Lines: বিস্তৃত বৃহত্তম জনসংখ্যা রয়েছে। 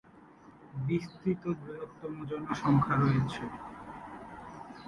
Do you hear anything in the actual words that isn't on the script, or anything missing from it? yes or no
no